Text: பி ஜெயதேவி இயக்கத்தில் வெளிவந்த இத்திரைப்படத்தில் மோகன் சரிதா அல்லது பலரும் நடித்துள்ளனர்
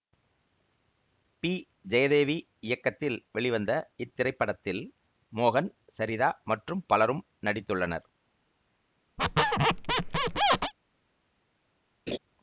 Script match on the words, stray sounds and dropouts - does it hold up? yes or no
no